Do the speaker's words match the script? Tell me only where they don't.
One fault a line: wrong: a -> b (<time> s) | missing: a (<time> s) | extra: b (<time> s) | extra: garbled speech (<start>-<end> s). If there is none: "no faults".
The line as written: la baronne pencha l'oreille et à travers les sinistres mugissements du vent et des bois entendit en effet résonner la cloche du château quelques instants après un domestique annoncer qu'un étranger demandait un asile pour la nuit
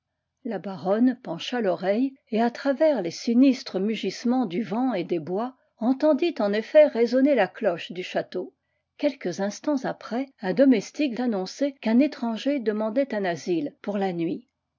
no faults